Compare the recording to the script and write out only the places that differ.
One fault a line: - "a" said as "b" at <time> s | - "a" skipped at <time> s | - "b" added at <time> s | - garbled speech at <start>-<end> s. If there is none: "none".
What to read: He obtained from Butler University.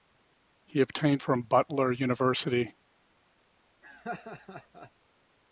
none